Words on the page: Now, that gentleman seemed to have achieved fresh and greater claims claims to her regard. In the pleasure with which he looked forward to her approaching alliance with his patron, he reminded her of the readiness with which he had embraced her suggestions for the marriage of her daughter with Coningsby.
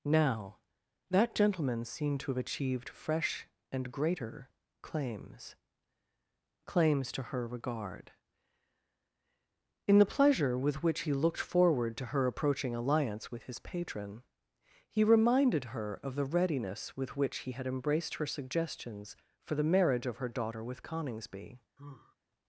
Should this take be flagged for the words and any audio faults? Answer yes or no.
yes